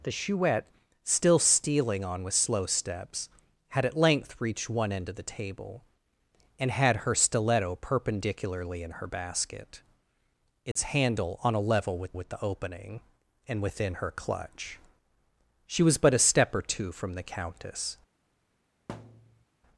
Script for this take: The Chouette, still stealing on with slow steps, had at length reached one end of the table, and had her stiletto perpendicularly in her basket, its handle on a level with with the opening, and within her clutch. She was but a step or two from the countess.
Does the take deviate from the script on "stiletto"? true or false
false